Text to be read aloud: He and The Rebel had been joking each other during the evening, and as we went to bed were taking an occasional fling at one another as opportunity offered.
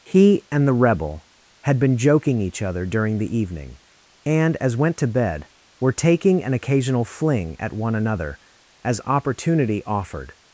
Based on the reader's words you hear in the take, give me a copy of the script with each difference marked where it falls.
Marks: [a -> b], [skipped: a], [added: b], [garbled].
He and The Rebel had been joking each other during the evening, and as [skipped: we] went to bed were taking an occasional fling at one another as opportunity offered.